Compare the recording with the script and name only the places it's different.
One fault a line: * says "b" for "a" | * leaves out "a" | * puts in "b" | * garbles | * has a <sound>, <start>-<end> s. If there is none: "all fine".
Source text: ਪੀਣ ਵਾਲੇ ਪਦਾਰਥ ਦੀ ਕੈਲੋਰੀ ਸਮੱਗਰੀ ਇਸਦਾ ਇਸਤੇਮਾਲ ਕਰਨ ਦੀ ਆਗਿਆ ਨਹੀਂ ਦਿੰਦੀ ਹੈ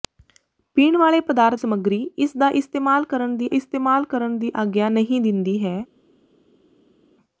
* says "ਸਮੱਗਰੀ ਇਸਦਾ ਇਸਤੇਮਾਲ ਕਰਨ ਦੀ" for "ਦੀ ਕੈਲੋਰੀ ਸਮੱਗਰੀ ਇਸਦਾ"